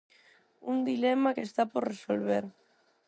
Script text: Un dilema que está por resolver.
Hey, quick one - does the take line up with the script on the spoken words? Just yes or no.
yes